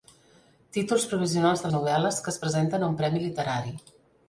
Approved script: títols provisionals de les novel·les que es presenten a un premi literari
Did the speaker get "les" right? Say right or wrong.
wrong